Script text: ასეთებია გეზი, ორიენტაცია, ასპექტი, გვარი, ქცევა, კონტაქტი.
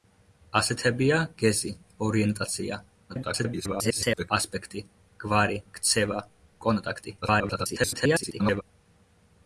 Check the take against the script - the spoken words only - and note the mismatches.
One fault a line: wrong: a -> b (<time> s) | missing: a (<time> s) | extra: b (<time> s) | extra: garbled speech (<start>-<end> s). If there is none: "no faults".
extra: garbled speech (3.1-4.3 s)
extra: garbled speech (7.2-8.6 s)